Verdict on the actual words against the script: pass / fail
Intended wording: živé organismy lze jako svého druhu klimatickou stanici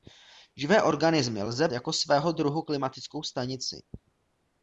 pass